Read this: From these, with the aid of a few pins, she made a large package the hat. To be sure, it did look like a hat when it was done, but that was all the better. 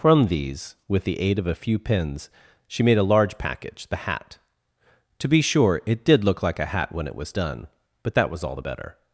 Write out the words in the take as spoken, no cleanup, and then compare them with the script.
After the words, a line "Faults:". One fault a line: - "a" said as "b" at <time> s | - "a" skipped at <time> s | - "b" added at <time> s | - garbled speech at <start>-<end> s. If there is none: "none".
From these, with the aid of a few pins, she made a large package the hat. To be sure, it did look like a hat when it was done, but that was all the better.
Faults:
none